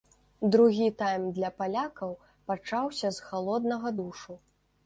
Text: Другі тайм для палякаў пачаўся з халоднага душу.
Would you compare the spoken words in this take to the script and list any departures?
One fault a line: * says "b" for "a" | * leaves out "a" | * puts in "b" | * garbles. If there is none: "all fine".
all fine